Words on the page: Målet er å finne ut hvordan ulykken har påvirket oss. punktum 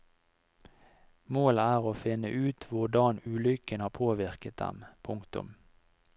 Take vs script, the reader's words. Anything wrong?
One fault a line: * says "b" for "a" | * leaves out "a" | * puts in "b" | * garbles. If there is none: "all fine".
* says "dem" for "oss"